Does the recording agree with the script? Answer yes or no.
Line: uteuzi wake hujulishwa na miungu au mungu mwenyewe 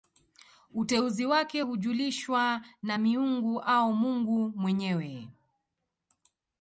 yes